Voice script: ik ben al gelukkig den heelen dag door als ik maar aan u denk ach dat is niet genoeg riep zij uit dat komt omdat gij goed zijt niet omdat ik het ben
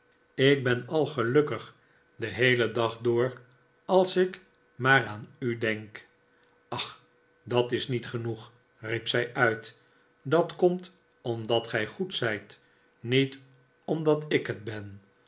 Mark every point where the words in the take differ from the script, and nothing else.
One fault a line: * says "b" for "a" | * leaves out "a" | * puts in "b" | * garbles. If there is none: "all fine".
all fine